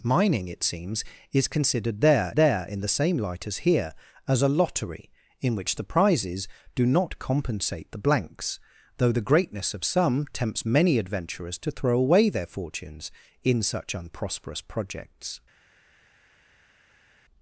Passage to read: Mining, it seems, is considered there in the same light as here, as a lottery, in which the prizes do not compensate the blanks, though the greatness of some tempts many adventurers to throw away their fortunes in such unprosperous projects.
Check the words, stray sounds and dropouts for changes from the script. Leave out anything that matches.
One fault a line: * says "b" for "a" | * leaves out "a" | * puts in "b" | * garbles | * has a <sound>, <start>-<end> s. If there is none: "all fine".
* puts in "there"